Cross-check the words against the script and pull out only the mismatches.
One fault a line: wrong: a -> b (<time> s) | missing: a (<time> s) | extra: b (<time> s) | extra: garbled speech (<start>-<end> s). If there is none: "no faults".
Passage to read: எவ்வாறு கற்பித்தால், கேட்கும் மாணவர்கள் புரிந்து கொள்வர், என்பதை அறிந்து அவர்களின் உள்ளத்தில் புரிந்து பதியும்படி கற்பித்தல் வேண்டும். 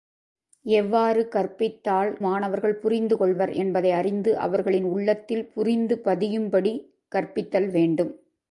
missing: கேட்கும் (2.1 s)